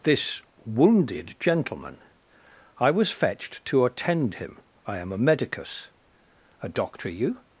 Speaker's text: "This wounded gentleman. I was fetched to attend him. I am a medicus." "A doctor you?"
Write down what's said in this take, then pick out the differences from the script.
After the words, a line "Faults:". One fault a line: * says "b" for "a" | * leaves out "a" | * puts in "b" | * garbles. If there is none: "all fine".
"This wounded gentleman. I was fetched to attend him. I am a medicus." "A doctor you?"
Faults:
all fine